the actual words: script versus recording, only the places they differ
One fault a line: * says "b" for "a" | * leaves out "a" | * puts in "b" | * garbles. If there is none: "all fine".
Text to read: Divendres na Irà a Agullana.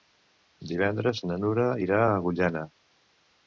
* puts in "Nura"